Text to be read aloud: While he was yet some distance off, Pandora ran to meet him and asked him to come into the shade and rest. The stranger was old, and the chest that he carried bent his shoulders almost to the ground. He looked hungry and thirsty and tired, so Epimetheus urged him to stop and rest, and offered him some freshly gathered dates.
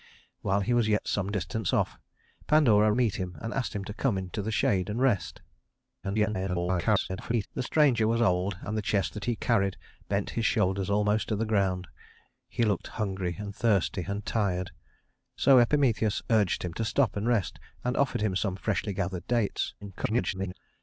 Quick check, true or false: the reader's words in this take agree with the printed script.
false